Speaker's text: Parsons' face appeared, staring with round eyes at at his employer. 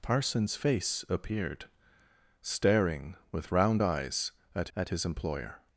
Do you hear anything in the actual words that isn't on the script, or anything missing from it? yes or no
no